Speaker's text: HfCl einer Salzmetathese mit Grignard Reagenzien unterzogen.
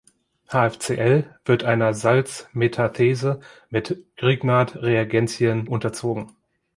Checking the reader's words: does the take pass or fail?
fail